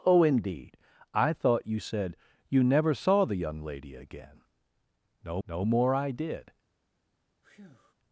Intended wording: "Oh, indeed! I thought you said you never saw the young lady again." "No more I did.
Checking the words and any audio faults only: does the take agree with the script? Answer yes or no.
no